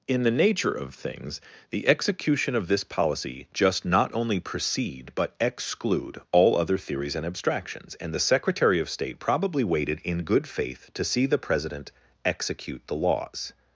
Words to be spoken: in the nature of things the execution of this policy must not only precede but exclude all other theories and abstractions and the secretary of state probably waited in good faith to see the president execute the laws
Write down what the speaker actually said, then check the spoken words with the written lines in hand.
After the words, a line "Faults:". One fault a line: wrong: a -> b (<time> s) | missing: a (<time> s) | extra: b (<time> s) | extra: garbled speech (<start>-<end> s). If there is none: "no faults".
in the nature of things the execution of this policy just not only precede but exclude all other theories and abstractions and the secretary of state probably waited in good faith to see the president execute the laws
Faults:
wrong: must -> just (3.5 s)